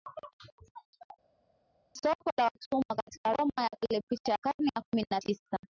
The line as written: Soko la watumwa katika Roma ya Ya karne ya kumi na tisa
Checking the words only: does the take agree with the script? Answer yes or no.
no